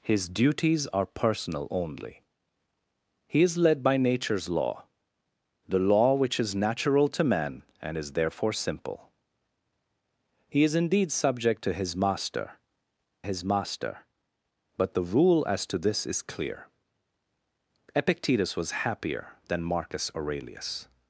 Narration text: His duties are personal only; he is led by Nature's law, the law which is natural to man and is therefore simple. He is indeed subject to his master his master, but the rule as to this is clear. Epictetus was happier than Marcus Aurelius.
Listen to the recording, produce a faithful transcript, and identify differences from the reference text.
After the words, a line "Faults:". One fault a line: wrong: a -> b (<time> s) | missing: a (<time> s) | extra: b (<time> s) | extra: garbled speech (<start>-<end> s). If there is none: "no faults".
His duties are personal only; he is led by Nature's law, the law which is natural to man and is therefore simple. He is indeed subject to his master his master, but the rule as to this is clear. Epictetus was happier than Marcus Aurelius.
Faults:
no faults